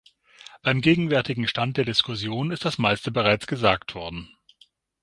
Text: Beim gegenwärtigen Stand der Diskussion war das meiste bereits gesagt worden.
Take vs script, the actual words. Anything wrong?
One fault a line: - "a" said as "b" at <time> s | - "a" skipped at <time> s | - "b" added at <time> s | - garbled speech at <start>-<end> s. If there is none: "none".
- "war" said as "ist" at 2.5 s